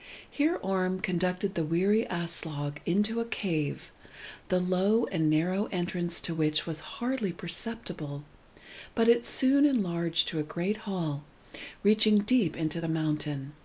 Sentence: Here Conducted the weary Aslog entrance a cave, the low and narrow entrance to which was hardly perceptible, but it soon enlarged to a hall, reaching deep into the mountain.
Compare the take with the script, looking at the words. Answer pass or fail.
fail